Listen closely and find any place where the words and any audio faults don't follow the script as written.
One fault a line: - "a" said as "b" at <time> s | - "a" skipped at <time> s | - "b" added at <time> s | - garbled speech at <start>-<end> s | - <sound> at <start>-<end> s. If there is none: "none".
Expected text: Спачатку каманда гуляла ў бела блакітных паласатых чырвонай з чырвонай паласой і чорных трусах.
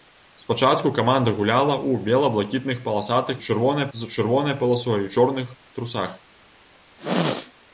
- throat clearing at 7.0-7.5 s